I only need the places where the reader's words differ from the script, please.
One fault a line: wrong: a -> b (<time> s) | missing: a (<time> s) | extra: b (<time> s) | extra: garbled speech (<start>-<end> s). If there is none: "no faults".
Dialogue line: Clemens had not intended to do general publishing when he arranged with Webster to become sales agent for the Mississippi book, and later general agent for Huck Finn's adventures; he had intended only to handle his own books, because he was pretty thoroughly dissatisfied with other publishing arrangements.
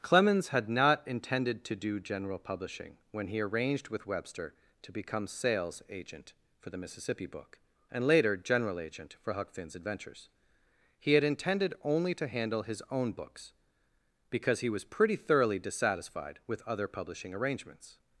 no faults